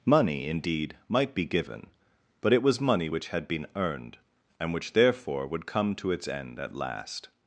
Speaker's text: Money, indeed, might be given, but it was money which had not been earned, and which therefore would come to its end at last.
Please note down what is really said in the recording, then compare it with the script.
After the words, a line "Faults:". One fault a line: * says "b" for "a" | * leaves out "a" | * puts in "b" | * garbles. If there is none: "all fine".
Money, indeed, might be given, but it was money which had been earned, and which therefore would come to its end at last.
Faults:
* leaves out "not"